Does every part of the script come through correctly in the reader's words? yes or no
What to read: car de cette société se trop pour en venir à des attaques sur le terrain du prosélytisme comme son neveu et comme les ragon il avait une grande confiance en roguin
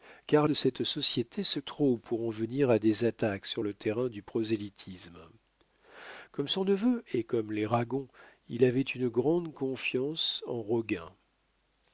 yes